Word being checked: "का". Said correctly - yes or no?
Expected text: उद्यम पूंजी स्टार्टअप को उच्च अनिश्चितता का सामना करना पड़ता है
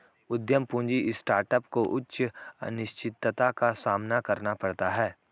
yes